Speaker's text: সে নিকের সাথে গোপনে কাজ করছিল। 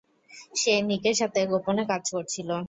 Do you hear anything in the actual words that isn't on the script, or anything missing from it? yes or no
no